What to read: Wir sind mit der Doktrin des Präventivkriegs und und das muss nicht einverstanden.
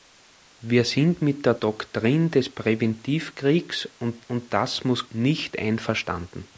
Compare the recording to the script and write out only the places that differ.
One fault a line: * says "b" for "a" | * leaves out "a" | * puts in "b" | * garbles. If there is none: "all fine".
all fine